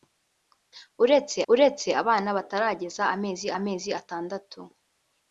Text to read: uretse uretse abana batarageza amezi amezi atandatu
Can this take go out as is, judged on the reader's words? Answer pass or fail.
pass